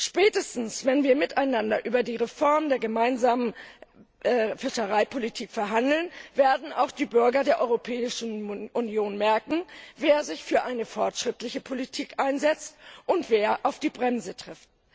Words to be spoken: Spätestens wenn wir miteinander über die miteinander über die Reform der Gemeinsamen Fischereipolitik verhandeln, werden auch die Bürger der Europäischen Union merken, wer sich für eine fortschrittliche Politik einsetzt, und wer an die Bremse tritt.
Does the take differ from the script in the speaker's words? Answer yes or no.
yes